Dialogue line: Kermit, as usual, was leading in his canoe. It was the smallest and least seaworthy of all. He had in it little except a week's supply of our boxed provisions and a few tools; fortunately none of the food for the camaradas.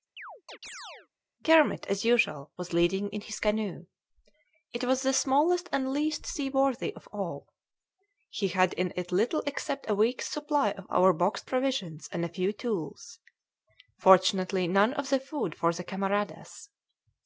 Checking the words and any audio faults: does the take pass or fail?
fail